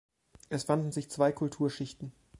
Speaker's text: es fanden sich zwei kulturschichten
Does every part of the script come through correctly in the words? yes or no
yes